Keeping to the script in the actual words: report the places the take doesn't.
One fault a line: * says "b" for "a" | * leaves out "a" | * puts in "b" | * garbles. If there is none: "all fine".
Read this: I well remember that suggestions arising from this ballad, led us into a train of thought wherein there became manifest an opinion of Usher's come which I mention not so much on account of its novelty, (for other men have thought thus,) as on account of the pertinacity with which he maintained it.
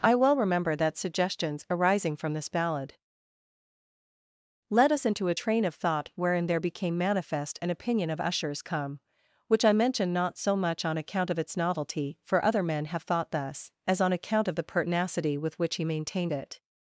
all fine